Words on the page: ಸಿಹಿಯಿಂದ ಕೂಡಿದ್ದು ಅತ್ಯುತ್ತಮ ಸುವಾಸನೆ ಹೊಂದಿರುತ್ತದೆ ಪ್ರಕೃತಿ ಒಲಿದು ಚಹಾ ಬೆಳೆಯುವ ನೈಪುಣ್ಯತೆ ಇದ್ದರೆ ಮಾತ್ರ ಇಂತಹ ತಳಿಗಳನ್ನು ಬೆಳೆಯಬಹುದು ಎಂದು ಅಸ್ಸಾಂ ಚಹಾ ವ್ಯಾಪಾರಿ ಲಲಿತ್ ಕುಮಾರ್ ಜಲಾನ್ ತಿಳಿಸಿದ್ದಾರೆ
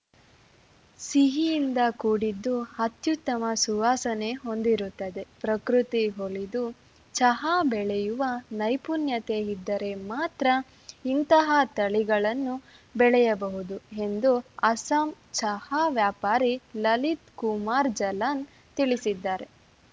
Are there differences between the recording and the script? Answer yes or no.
no